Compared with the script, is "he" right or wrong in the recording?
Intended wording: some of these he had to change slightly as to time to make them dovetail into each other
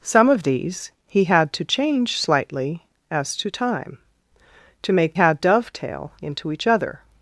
right